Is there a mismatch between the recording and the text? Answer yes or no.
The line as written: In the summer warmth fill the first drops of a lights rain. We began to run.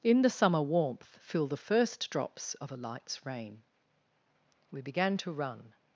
no